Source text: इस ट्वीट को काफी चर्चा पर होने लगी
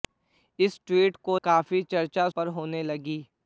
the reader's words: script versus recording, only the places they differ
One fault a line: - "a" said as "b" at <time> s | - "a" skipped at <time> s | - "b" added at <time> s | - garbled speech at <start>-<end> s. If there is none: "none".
none